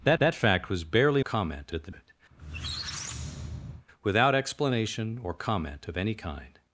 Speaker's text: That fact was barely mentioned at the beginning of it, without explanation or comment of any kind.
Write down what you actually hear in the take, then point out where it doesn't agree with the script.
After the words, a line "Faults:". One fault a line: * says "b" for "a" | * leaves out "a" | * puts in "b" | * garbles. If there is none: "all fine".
That that fact was barely comment at the it, without explanation or comment of any kind.
Faults:
* puts in "that"
* says "comment" for "mentioned"
* leaves out "beginning of"